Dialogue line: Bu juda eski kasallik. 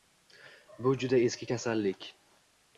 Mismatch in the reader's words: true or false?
false